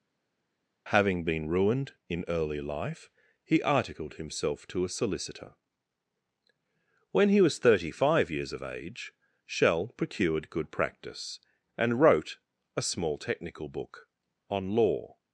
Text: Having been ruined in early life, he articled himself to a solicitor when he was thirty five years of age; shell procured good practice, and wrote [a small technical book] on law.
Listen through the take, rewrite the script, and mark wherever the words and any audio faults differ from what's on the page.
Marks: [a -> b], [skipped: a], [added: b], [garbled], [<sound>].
Having been ruined in early life, he articled himself to a solicitor when he was thirty five years of age; shell procured good practice, and wrote [a small technical book] on law.